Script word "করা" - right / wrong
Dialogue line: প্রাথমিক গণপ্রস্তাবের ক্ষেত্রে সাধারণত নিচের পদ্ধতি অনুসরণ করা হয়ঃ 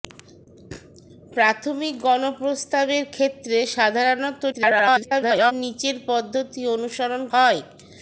wrong